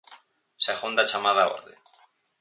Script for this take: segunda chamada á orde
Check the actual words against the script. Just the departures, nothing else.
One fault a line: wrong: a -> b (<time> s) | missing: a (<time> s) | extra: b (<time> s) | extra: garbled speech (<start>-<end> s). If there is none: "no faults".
no faults